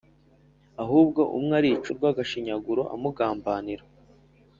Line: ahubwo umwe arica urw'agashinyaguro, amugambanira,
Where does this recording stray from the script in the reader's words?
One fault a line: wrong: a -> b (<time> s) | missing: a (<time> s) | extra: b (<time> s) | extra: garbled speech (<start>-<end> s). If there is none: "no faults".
no faults